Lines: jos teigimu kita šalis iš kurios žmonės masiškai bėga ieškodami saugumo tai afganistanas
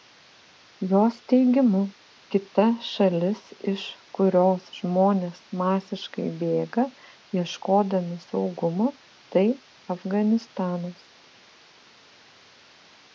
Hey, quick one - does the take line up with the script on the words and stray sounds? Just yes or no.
yes